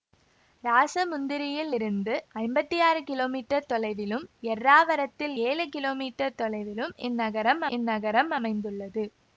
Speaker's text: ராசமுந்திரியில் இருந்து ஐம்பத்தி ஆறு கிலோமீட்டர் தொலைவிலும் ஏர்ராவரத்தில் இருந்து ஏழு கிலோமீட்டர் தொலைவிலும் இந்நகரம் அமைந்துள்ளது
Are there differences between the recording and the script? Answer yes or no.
yes